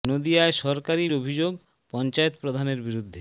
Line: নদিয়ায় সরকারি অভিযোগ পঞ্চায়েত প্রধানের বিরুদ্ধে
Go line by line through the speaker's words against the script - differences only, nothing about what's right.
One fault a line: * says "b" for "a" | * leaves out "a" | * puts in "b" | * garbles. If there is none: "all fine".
all fine